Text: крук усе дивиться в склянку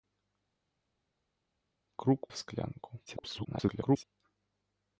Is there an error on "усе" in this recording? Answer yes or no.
yes